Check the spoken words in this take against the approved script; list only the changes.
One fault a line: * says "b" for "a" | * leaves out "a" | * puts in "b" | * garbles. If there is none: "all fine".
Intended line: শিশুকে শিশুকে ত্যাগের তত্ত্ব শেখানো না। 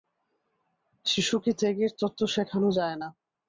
* leaves out "শিশুকে"
* puts in "যায়"